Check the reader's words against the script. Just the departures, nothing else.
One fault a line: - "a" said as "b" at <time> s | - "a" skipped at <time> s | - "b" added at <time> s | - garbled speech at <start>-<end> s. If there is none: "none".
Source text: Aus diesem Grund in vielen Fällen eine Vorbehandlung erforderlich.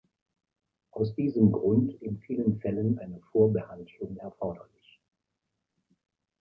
none